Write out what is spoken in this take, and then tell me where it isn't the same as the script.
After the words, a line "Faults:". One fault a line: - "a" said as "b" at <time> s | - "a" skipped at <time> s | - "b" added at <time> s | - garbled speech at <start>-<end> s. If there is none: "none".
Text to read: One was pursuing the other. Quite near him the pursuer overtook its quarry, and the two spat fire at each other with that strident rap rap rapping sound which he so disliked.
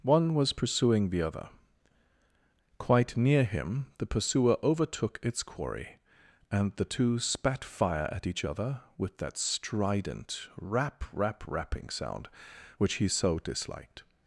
One was pursuing the other. Quite near him the pursuer overtook its quarry, and the two spat fire at each other with that strident rap rap rapping sound which he so disliked.
Faults:
none